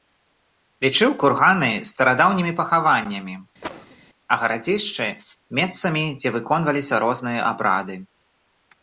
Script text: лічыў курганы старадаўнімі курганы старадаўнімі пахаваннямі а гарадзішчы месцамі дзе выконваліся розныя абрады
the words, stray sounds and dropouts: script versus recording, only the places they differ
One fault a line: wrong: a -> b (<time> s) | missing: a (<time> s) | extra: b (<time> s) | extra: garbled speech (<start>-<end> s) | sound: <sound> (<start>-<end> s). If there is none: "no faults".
missing: курганы старадаўнімі (2.5 s)
sound: cough (3.6-4.0 s)